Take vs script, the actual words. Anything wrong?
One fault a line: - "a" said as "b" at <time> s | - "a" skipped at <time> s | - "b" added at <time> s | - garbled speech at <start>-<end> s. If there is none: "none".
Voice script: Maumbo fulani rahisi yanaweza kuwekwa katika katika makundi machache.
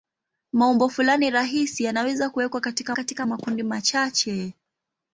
none